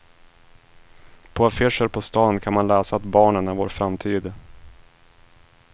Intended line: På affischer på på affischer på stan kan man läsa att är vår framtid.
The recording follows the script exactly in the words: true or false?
false